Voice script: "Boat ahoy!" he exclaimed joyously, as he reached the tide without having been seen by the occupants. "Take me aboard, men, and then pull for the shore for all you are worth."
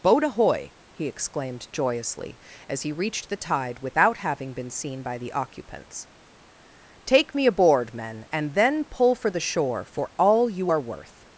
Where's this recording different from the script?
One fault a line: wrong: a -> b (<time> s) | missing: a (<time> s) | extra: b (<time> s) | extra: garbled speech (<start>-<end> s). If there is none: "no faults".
no faults